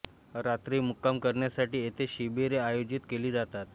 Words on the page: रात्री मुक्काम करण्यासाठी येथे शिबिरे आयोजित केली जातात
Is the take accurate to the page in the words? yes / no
yes